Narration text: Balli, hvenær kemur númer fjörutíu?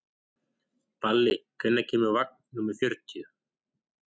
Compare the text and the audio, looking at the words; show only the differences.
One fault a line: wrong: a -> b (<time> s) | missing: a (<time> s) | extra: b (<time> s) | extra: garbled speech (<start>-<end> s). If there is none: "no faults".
extra: vagn (2.2 s)